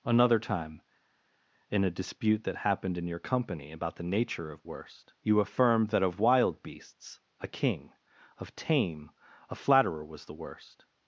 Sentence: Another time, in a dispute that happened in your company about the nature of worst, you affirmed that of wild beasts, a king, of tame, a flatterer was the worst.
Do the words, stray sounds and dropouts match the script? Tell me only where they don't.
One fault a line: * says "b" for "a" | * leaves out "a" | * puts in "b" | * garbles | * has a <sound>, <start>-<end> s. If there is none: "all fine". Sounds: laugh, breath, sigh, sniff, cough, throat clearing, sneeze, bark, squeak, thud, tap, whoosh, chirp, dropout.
all fine